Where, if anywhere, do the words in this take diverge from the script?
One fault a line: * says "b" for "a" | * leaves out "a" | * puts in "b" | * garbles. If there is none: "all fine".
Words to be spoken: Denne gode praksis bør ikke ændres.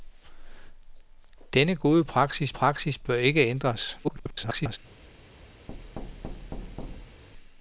* puts in "praksis"
* garbles